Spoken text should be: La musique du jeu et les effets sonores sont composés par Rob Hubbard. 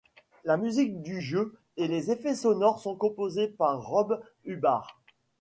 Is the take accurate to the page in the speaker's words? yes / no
yes